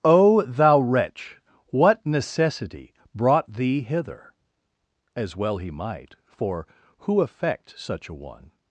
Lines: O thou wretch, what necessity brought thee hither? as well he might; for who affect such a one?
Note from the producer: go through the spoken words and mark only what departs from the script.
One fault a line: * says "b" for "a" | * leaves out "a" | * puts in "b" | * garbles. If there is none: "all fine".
all fine